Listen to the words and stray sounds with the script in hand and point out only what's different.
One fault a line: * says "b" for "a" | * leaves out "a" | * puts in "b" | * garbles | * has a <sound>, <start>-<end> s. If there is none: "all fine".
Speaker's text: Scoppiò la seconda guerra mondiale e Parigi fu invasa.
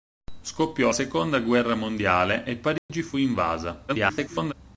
* leaves out "la"
* has a dropout, 2.8-2.9 s
* garbles